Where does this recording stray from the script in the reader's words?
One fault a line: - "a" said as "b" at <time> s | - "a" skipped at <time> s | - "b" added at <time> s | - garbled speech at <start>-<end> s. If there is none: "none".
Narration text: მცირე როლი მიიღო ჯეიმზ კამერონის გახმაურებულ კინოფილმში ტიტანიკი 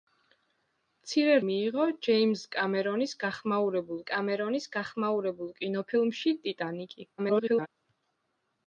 - "როლი" skipped at 1.4 s
- "კამერონის გახმაურებულ" added at 4.1 s
- garbled speech at 7.2-7.7 s